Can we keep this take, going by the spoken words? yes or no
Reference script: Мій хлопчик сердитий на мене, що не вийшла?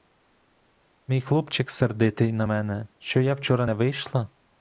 no